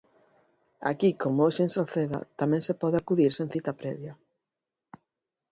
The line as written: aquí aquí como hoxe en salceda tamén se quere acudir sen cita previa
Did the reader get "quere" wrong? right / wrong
wrong